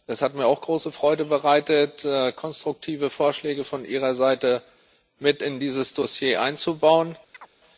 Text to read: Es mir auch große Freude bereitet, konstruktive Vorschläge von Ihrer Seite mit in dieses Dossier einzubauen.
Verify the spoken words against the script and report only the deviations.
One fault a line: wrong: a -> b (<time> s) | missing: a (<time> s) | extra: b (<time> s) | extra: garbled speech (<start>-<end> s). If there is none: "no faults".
extra: hat (0.2 s)